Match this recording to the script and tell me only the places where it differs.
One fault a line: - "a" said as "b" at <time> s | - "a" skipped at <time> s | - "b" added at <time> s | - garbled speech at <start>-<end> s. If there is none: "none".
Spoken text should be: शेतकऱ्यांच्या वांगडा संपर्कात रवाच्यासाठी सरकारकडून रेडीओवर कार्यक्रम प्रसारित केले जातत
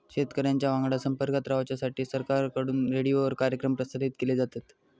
none